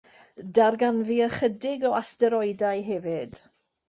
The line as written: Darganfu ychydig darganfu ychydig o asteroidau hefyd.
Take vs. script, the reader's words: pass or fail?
fail